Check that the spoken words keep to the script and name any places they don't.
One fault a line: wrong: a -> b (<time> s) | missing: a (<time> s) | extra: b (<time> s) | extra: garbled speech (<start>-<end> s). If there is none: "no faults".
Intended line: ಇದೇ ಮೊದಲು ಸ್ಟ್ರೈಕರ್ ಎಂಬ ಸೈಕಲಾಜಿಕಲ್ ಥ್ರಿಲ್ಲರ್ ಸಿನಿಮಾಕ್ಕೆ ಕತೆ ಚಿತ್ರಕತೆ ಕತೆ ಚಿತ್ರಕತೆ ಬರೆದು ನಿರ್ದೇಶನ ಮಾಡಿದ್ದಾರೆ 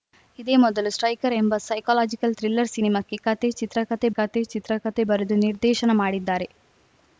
no faults